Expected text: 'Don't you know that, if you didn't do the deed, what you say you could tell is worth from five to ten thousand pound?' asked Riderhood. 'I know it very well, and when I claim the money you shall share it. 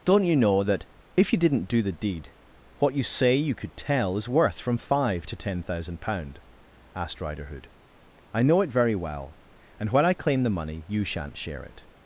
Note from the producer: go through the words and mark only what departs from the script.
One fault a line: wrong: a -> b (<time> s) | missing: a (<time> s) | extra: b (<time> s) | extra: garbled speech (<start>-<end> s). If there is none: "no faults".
wrong: shall -> shan't (11.0 s)